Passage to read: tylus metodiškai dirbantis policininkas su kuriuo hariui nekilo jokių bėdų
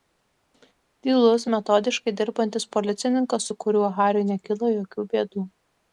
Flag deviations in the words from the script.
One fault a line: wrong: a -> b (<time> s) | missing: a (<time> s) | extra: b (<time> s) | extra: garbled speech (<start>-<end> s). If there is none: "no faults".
no faults